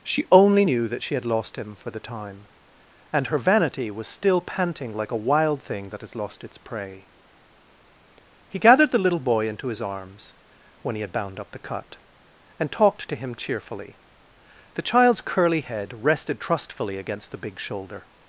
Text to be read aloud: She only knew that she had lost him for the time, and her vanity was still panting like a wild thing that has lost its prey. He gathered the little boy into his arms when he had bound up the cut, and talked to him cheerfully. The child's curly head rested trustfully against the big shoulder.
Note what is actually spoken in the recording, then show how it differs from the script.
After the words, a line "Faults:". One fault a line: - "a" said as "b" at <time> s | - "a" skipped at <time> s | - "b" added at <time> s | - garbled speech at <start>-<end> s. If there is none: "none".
She only knew that she had lost him for the time, and her vanity was still panting like a wild thing that has lost its prey. He gathered the little boy into his arms when he had bound up the cut, and talked to him cheerfully. The child's curly head rested trustfully against the big shoulder.
Faults:
none